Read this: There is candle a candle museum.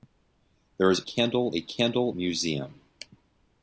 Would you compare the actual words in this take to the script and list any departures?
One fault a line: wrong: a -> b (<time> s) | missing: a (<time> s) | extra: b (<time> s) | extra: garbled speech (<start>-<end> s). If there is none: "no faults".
no faults